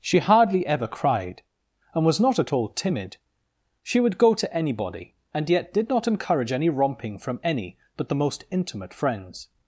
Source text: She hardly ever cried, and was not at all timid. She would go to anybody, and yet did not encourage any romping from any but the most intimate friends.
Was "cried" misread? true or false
false